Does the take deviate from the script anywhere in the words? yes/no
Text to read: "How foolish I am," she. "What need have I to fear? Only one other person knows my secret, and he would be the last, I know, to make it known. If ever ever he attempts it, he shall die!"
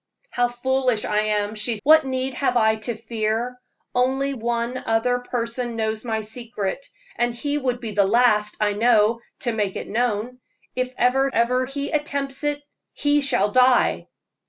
no